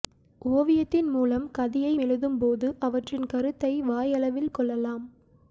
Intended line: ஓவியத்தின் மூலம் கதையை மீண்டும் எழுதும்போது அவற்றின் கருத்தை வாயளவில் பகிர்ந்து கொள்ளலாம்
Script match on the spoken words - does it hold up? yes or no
no